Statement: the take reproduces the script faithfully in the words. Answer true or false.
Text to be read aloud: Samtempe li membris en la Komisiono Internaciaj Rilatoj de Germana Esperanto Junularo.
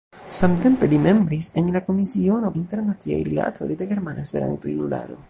true